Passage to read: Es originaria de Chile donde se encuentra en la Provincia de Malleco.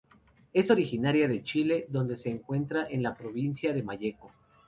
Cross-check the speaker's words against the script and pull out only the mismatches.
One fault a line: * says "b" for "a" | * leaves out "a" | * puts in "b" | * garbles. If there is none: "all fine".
all fine